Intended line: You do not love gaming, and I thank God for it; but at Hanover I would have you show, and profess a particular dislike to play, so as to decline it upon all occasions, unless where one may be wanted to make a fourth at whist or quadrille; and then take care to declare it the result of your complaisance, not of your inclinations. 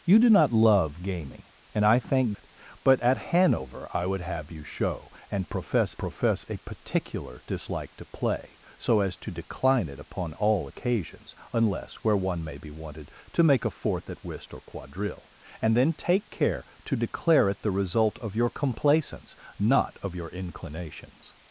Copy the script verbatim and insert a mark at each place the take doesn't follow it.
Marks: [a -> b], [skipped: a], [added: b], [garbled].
You do not love gaming, and I thank [skipped: God for] it; but at Hanover I would have you show, and profess [added: profess] a particular dislike to play, so as to decline it upon all occasions, unless where one may be wanted to make a fourth at whist or quadrille; and then take care to declare it the result of your complaisance, not of your inclinations.